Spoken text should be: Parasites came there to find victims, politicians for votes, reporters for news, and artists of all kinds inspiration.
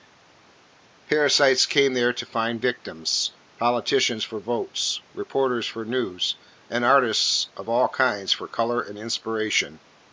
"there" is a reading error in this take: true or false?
false